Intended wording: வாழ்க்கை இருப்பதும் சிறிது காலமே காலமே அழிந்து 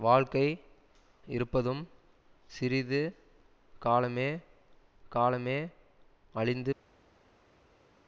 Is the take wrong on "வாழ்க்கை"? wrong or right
right